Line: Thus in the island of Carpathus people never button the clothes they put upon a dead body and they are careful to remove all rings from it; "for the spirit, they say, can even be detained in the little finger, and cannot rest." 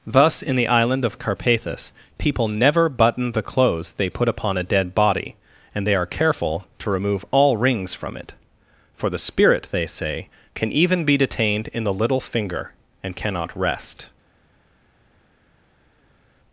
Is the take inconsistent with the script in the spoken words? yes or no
no